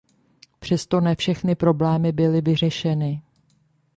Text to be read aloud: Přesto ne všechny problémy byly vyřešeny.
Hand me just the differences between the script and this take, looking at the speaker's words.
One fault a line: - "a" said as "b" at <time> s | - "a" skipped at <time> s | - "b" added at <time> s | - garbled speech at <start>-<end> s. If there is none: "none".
none